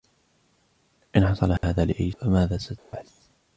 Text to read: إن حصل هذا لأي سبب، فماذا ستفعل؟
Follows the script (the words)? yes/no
no